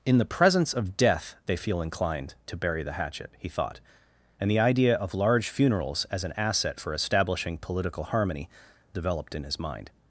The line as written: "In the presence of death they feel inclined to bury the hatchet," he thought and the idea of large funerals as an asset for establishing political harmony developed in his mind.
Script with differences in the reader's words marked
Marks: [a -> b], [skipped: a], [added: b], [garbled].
"In the presence of death they feel inclined to bury the hatchet," he thought and the idea of large funerals as an asset for establishing political harmony developed in his mind.